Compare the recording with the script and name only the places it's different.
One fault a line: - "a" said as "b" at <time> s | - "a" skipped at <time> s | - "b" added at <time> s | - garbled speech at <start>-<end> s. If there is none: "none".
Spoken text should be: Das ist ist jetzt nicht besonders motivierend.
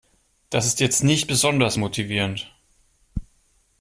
- "ist" skipped at 0.8 s